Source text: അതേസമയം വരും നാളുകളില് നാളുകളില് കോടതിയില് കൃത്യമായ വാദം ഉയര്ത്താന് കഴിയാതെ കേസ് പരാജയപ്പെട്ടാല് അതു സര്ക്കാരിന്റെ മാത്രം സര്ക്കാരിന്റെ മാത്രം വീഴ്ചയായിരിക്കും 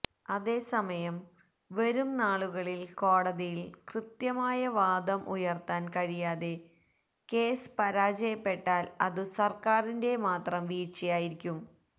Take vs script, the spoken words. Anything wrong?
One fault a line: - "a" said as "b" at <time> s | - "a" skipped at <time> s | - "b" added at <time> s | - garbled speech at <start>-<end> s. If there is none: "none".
- "നാളുകളില്" skipped at 2.9 s
- "സര്ക്കാരിന്റെ മാത്രം" skipped at 10.6 s